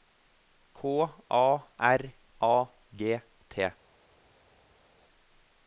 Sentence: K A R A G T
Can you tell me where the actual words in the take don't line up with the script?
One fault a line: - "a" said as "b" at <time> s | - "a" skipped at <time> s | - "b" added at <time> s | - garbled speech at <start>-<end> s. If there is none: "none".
none